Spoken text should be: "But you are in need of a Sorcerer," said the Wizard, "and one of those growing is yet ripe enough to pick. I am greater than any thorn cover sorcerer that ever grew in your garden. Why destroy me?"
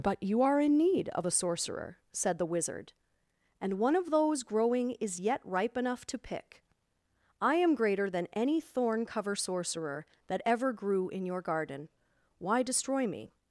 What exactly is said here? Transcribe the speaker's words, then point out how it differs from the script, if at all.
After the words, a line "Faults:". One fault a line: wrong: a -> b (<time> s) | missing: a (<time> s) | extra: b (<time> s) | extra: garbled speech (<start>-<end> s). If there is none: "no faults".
"But you are in need of a Sorcerer," said the Wizard, "and one of those growing is yet ripe enough to pick. I am greater than any thorn cover sorcerer that ever grew in your garden. Why destroy me?"
Faults:
no faults